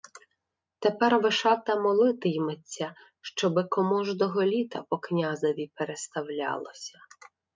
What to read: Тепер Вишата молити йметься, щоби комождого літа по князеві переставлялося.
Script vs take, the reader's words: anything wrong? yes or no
no